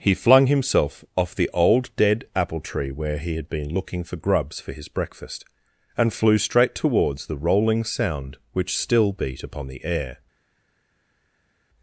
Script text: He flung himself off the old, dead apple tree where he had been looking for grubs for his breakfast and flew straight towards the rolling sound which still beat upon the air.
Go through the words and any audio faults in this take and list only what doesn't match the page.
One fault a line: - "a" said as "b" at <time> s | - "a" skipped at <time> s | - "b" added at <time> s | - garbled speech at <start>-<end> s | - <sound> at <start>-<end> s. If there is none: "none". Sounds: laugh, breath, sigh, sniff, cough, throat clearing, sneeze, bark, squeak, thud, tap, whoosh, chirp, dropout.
none